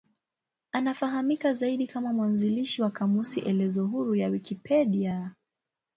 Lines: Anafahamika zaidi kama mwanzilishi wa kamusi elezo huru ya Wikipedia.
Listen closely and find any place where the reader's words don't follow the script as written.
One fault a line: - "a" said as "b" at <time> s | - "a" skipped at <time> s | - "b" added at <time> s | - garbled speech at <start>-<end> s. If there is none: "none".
none